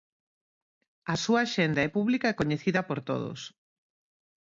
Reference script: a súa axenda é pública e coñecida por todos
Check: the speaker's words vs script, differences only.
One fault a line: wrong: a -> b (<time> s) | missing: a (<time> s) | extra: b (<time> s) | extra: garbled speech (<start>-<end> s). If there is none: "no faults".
no faults